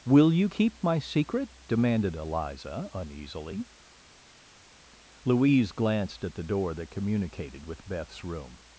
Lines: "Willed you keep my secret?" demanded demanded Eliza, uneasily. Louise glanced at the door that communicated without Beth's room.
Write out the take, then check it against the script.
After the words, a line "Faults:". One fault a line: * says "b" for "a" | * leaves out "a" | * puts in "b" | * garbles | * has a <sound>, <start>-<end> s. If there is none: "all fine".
"Will you keep my secret?" demanded Eliza, uneasily. Louise glanced at the door that communicated with Beth's room.
Faults:
* says "Will" for "Willed"
* leaves out "demanded"
* says "with" for "without"